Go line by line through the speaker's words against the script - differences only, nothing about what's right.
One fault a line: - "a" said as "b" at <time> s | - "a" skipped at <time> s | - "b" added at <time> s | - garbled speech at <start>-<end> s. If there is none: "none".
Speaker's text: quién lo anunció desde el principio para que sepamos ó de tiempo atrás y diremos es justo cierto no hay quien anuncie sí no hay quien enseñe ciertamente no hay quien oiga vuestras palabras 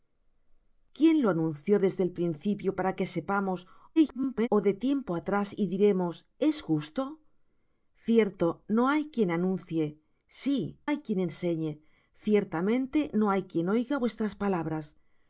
- garbled speech at 4.0-4.5 s
- "no" skipped at 10.8 s